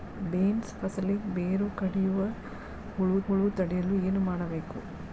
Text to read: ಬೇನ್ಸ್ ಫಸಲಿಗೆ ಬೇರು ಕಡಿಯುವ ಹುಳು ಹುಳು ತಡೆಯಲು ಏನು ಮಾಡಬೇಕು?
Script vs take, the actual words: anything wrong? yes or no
no